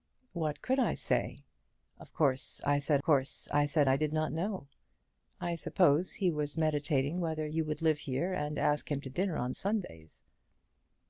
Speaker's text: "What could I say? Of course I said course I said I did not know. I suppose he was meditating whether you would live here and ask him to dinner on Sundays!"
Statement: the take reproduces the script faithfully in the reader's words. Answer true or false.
true